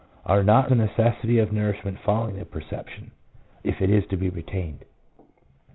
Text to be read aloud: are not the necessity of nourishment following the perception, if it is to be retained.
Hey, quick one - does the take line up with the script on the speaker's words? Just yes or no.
yes